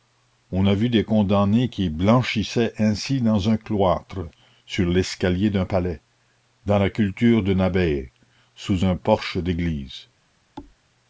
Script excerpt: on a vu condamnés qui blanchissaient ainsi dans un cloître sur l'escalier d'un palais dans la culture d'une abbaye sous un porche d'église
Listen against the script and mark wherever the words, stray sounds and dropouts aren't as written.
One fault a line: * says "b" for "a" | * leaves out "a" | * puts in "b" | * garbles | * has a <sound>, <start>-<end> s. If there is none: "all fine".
* puts in "des"
* has a thud, 10.6-10.8 s